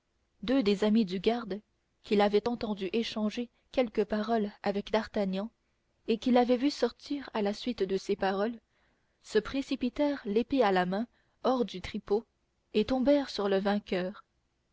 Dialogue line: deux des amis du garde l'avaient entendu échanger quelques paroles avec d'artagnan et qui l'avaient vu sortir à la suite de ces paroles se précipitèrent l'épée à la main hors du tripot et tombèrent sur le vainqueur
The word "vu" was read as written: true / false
true